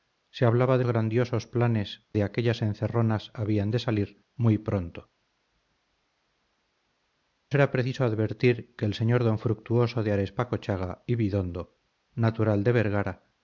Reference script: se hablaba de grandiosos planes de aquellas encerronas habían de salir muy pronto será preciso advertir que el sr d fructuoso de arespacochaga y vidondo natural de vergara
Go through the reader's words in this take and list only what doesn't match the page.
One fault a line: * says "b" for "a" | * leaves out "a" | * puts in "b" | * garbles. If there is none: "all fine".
all fine